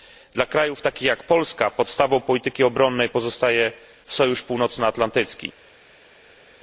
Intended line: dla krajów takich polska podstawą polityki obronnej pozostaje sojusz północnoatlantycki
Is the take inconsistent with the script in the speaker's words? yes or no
yes